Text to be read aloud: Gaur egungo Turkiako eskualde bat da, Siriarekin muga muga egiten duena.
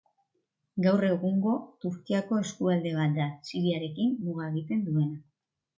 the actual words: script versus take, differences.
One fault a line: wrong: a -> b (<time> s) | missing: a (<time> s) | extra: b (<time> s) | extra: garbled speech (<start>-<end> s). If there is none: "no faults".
missing: muga (4.5 s)